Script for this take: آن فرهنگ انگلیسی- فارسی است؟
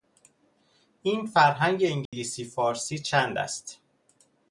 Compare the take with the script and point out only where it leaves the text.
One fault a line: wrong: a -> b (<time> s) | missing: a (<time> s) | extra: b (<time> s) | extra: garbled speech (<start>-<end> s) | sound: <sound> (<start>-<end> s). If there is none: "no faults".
wrong: آن -> این (1.0 s)
sound: dropout (2.1-2.1 s)
extra: چند (3.0 s)